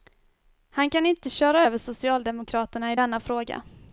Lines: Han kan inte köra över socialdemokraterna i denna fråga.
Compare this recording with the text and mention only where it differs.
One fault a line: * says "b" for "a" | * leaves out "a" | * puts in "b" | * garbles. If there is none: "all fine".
all fine